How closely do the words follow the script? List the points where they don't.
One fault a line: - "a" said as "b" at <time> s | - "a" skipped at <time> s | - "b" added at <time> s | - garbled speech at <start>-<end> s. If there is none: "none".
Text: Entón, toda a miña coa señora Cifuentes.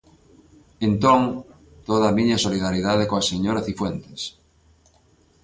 - "solidariedade" added at 2.4 s